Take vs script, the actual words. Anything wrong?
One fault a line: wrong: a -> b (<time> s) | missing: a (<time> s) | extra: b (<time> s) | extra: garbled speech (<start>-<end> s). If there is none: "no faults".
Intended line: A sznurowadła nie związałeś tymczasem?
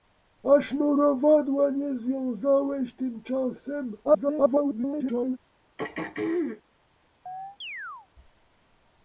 extra: garbled speech (4.0-5.4 s)